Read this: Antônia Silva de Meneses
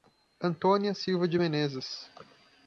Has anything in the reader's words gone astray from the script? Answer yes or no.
no